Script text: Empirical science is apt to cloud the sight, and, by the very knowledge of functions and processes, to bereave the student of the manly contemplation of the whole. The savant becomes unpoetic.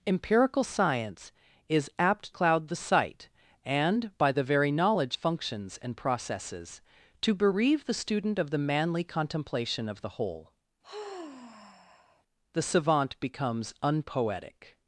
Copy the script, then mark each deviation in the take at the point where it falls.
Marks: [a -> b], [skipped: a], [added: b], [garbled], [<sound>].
Empirical science is apt [skipped: to] cloud the sight, and, by the very knowledge [skipped: of] functions and processes, to bereave the student of the manly contemplation of the whole. [sigh] The savant becomes unpoetic.